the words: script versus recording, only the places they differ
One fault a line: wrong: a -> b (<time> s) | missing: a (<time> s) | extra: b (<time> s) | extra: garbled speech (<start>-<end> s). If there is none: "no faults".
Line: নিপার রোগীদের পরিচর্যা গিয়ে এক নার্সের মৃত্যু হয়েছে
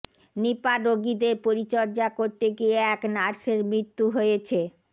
extra: করতে (2.2 s)